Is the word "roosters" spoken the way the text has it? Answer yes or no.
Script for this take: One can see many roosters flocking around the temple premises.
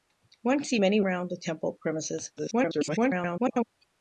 no